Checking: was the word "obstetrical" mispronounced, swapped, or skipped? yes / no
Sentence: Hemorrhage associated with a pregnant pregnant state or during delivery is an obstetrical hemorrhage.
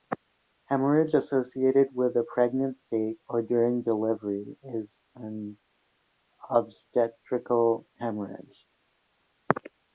no